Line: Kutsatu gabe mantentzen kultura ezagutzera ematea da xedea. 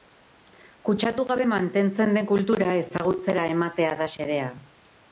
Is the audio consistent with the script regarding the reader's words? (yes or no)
no